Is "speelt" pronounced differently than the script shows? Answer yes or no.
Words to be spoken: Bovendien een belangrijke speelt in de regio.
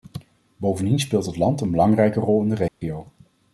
yes